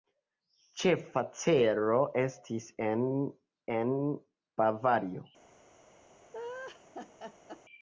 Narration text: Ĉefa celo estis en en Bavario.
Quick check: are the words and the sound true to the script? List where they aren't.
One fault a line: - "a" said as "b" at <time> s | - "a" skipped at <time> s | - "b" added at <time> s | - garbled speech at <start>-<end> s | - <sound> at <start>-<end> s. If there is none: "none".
- laugh at 6.3-7.6 s